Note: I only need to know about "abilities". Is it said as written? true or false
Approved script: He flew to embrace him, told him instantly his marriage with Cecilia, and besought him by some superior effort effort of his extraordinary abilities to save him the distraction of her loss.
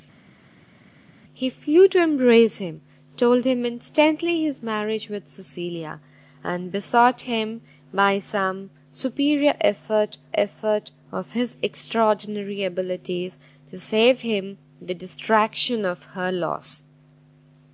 true